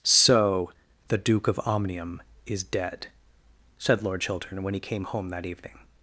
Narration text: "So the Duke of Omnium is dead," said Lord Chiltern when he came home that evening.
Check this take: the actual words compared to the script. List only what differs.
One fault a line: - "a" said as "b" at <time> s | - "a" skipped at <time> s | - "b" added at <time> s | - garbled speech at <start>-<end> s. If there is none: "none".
none